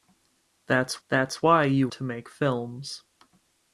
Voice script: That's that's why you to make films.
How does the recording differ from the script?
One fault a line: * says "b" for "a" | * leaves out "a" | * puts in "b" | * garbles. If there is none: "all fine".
all fine